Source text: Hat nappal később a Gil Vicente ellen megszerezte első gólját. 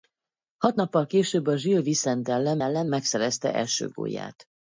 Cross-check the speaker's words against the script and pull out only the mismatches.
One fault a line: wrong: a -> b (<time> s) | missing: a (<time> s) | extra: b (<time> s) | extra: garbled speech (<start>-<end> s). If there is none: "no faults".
extra: ellen (2.6 s)